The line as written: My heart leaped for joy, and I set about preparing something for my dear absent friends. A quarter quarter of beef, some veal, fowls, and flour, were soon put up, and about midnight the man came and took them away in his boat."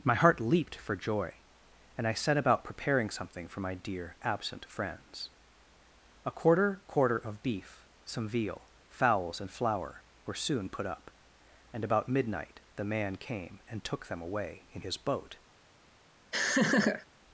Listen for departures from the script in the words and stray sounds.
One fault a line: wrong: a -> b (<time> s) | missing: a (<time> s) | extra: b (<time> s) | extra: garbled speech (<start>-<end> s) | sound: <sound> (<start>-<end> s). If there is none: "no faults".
sound: laugh (16.3-17.1 s)